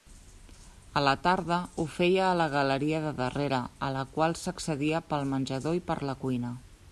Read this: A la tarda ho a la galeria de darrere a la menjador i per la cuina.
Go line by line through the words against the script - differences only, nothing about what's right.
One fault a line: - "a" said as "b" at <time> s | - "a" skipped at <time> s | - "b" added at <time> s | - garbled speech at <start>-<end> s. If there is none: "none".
- "feia" added at 2.0 s
- "qual s'accedia pel" added at 4.2 s